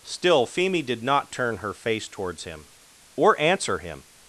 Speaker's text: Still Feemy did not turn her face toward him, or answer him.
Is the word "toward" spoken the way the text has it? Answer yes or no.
no